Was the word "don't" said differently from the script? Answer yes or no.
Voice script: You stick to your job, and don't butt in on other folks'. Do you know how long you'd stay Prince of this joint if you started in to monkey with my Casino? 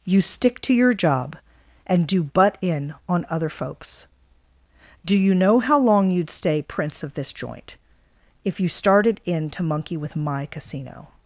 yes